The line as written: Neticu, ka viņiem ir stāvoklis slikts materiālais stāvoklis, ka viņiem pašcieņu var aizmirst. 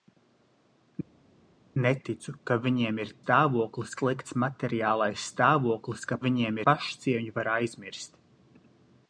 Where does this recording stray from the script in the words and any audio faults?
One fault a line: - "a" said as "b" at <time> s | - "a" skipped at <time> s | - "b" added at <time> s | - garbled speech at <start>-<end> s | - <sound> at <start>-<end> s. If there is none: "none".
none